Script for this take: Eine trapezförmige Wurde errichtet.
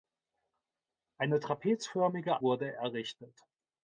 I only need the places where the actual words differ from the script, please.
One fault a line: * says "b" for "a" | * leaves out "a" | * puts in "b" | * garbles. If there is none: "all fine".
all fine